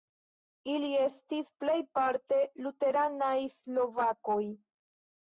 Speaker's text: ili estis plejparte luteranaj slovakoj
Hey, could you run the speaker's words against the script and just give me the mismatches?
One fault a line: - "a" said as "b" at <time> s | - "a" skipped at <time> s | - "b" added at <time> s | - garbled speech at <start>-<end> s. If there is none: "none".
none